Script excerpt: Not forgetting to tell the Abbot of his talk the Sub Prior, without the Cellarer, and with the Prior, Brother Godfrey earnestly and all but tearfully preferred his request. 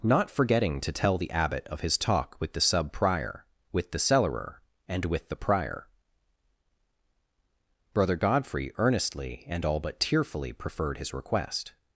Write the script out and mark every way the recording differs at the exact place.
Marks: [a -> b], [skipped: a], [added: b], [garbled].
Not forgetting to tell the Abbot of his talk [added: with] the Sub Prior, [without -> with] the Cellarer, and with the Prior, Brother Godfrey earnestly and all but tearfully preferred his request.